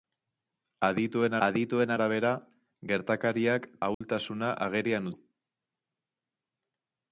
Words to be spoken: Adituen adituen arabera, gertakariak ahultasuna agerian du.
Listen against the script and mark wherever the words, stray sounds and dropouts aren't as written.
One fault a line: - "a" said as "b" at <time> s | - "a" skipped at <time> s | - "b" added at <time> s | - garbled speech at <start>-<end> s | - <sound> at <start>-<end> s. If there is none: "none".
- dropout at 3.9-4.0 s